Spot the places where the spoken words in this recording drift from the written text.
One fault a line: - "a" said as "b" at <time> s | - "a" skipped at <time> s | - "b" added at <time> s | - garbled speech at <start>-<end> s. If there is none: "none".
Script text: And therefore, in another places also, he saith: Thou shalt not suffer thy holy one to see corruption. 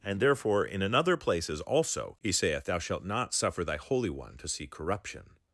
none